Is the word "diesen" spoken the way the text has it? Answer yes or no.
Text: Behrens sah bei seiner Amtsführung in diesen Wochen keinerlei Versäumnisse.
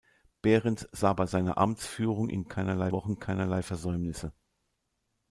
no